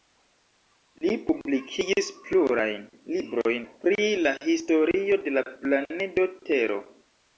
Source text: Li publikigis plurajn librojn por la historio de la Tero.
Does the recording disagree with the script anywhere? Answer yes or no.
yes